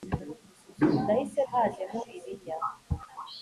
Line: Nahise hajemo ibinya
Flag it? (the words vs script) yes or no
no